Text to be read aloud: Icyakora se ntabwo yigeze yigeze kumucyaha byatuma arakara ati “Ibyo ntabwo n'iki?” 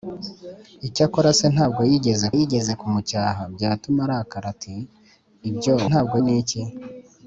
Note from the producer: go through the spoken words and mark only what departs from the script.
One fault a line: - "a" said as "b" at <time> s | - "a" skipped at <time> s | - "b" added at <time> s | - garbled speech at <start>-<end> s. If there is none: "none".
none